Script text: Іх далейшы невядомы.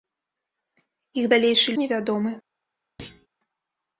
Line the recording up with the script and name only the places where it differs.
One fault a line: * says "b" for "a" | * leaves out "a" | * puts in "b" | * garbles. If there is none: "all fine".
all fine